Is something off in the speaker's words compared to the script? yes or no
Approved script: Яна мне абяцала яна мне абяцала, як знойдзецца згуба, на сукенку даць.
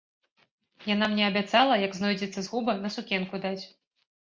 yes